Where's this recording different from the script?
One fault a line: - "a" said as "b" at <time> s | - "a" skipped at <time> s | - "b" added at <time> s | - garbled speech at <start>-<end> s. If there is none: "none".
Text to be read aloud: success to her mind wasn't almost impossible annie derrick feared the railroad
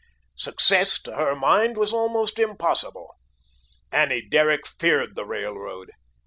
- "wasn't" said as "was" at 1.8 s